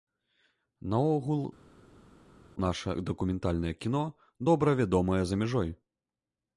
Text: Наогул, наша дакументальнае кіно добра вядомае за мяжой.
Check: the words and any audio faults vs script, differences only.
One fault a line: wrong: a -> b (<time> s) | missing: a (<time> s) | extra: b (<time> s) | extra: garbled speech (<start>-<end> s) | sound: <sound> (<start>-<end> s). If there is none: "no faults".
no faults